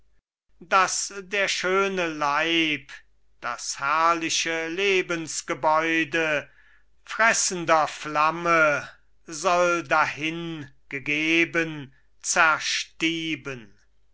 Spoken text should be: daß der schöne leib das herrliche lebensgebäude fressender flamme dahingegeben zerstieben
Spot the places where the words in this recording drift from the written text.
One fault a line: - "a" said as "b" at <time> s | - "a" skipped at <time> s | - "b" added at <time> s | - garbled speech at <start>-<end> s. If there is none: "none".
- "soll" added at 9.2 s